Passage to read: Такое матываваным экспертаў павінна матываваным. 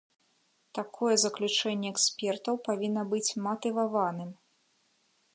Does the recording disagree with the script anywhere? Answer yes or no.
yes